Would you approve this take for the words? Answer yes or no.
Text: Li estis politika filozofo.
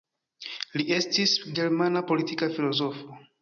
no